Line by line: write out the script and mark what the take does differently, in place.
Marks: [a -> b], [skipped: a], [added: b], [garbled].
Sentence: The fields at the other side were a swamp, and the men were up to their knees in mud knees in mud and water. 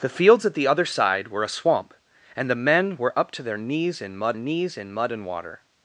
The fields at the other side were a swamp, and the men were up to their knees in mud knees in mud and water.